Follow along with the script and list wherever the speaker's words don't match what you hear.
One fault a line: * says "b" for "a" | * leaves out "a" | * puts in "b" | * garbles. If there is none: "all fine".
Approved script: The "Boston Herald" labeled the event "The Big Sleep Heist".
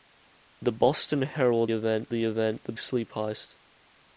* says "event" for "labeled"
* leaves out "Big"